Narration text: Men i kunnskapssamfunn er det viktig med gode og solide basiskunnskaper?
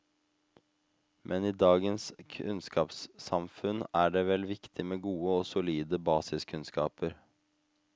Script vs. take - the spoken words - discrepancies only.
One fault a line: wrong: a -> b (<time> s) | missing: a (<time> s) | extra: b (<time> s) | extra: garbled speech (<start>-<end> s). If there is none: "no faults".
extra: dagens (1.6 s)
extra: vel (4.3 s)